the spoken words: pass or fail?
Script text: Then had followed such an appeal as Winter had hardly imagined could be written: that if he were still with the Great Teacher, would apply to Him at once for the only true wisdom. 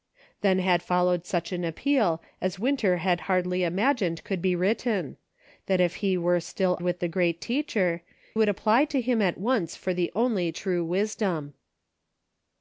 pass